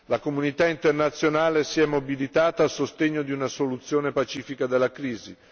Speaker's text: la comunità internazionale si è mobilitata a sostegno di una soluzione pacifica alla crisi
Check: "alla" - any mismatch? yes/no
yes